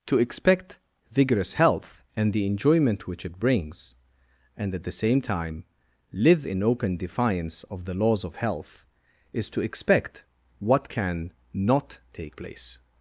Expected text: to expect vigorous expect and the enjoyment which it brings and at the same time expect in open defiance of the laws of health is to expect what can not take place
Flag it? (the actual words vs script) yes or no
yes